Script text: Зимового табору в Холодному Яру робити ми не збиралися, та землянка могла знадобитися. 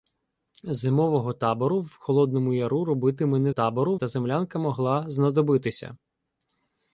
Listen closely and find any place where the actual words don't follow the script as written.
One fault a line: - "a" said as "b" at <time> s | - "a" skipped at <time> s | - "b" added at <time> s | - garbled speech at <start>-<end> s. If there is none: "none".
- "збиралися" said as "табору" at 3.5 s